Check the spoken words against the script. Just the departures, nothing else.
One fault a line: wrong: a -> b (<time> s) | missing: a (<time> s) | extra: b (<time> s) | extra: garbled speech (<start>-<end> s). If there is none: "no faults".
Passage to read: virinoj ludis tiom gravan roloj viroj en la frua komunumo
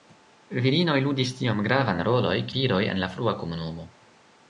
no faults